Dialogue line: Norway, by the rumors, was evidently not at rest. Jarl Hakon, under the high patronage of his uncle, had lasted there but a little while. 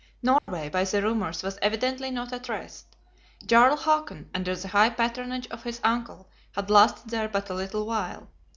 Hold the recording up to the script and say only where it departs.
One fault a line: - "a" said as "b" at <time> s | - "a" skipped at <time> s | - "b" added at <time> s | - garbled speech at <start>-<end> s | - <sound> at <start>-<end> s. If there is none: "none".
- dropout at 0.4-0.5 s